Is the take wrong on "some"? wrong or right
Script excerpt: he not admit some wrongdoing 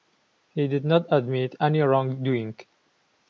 wrong